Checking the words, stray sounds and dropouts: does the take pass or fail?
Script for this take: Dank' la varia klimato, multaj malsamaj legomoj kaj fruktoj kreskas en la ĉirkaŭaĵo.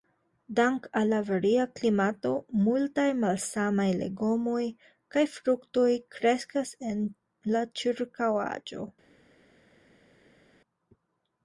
fail